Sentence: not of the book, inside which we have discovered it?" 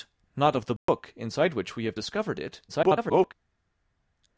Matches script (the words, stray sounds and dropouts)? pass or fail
fail